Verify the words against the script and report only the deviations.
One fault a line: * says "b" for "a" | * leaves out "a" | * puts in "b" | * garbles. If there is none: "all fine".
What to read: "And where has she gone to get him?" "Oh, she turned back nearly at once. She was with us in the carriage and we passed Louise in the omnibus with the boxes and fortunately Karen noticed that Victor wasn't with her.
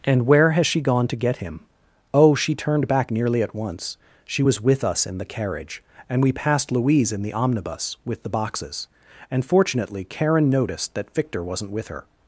all fine